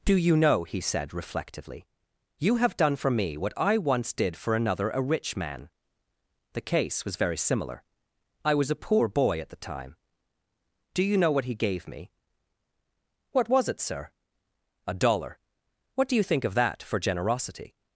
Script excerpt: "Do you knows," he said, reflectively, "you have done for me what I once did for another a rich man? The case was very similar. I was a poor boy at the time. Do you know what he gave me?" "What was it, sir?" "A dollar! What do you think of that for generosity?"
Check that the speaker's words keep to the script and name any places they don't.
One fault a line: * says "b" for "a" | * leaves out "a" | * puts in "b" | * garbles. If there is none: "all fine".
* says "know" for "knows"